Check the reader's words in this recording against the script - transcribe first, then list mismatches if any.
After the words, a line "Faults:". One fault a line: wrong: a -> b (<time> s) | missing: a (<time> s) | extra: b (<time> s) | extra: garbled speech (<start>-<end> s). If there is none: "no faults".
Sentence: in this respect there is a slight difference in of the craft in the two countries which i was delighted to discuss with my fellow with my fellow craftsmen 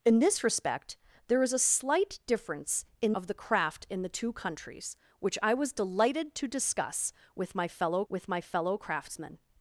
in this respect there is a slight difference in of the craft in the two countries which i was delighted to discuss with my fellow with my fellow craftsmen
Faults:
no faults